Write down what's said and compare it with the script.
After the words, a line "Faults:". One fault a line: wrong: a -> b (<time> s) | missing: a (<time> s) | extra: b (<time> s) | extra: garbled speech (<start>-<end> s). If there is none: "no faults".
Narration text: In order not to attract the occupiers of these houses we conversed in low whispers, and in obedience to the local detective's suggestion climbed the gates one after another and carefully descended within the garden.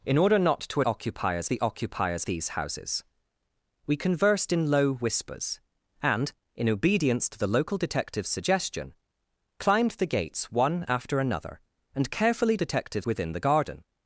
In order not to occupiers the occupiers these houses we conversed in low whispers, and in obedience to the local detective's suggestion climbed the gates one after another and carefully detective's within the garden.
Faults:
wrong: attract -> occupiers (0.8 s)
missing: of (2.2 s)
wrong: descended -> detective's (12.5 s)